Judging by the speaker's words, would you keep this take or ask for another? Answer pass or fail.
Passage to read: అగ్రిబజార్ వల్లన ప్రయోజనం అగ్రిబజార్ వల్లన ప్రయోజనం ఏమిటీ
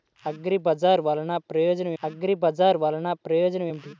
pass